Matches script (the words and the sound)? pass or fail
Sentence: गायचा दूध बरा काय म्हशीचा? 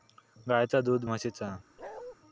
fail